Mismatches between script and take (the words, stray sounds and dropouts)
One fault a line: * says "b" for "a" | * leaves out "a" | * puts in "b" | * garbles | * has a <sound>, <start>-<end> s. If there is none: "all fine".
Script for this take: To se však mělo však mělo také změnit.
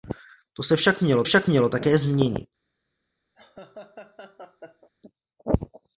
* has a laugh, 3.3-4.9 s